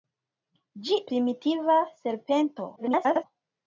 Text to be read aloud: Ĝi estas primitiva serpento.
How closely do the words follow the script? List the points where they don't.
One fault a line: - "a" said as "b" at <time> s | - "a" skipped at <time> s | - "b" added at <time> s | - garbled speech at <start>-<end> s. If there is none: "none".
- "estas" skipped at 1.0 s
- garbled speech at 2.8-3.2 s